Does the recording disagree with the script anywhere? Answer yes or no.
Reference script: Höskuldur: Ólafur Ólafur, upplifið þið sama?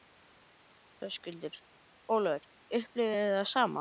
yes